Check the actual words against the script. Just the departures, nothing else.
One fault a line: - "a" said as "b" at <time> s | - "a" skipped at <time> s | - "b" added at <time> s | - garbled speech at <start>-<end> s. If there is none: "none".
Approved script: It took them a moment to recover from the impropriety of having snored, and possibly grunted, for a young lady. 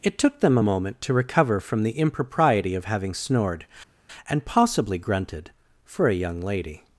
none